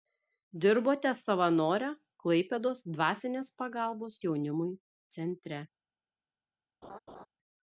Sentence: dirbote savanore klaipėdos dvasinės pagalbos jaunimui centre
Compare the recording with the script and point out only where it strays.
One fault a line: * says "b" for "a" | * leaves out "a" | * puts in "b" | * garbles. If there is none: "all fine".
all fine